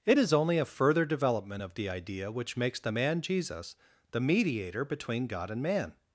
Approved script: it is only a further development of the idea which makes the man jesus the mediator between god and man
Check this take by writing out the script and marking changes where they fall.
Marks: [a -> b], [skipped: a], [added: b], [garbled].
it is only a further development of the idea which makes the man jesus the mediator between god and man